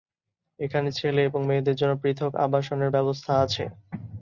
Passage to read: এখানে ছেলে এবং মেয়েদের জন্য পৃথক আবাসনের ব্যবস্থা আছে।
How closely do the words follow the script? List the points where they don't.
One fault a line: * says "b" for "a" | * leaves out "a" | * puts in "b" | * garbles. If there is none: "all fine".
all fine